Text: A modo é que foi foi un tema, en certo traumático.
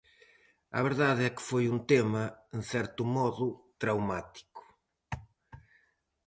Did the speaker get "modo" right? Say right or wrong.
wrong